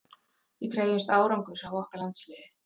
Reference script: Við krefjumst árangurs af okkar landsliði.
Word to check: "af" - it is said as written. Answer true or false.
true